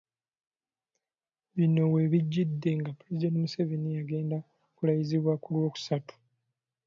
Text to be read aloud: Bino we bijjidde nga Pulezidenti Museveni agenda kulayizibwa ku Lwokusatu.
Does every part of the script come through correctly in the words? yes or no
yes